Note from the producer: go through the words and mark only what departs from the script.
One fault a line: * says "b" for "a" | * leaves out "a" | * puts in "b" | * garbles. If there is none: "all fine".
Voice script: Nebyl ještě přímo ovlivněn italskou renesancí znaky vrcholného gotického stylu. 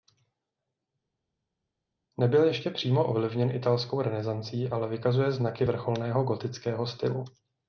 * puts in "ale vykazuje"